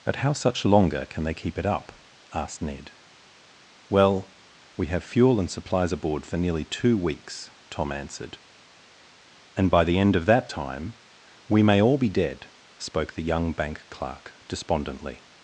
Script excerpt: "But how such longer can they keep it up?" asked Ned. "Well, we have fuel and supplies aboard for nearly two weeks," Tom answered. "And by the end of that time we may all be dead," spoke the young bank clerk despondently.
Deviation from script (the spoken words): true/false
false